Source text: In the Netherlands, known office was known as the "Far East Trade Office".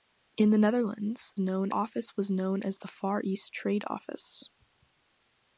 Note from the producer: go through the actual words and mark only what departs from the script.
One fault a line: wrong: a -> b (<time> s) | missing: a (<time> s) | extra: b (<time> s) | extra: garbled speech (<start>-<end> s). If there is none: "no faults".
no faults